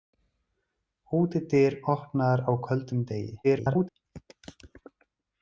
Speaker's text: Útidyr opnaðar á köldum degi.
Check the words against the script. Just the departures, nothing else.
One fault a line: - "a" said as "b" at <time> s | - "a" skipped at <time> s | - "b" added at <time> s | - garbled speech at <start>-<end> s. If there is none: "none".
- garbled speech at 3.4-3.9 s